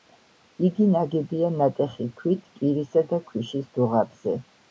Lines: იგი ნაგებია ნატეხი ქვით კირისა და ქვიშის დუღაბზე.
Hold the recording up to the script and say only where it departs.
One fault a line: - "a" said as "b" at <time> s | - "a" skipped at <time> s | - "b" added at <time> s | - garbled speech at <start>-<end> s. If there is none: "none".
none